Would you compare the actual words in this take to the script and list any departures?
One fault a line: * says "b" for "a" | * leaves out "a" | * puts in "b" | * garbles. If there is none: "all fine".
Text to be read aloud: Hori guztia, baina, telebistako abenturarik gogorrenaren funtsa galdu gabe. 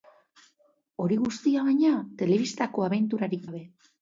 * leaves out "gogorrenaren funtsa galdu"